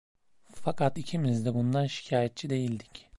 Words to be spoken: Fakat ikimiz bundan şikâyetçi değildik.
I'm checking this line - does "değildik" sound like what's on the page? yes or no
yes